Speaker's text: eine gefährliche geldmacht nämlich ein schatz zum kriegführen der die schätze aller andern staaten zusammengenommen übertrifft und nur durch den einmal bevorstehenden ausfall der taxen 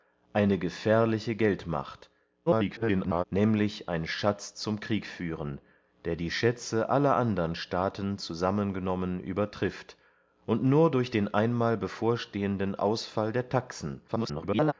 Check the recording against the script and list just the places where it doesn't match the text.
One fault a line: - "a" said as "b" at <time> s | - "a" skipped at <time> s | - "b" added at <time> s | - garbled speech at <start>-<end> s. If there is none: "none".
- garbled speech at 2.5-3.2 s
- garbled speech at 14.1-14.7 s